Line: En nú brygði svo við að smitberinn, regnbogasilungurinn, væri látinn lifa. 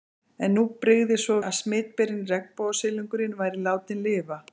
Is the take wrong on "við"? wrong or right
wrong